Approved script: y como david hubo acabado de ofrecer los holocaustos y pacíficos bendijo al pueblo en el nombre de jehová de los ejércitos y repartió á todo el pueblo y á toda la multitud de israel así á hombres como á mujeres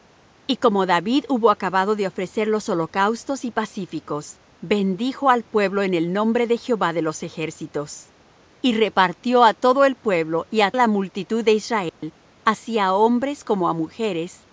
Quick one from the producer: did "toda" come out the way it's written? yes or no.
no